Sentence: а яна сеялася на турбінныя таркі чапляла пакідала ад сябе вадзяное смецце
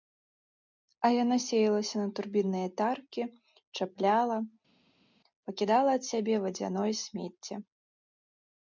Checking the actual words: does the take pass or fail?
pass